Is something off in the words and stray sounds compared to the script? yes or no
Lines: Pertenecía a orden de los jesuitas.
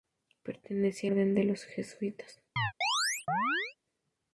yes